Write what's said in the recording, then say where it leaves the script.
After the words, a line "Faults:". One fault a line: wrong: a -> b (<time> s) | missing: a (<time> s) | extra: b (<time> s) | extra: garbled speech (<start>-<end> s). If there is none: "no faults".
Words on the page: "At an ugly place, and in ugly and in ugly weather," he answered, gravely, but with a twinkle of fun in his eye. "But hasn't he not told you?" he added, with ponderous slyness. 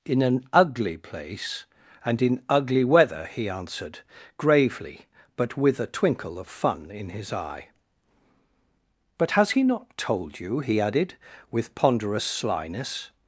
"In an ugly place, and in ugly weather," he answered, gravely, but with a twinkle of fun in his eye. "But has he not told you?" he added, with ponderous slyness.
Faults:
wrong: At -> In (0.1 s)
missing: and in ugly (2.8 s)
wrong: hasn't -> has (9.3 s)